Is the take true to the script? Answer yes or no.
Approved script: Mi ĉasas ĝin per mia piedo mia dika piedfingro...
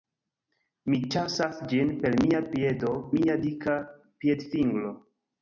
yes